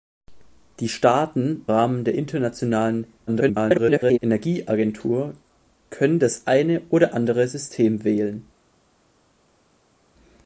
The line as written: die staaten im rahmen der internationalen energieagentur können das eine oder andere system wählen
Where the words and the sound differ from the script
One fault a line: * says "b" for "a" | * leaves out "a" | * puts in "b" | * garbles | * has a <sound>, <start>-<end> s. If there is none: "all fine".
* leaves out "im"
* garbles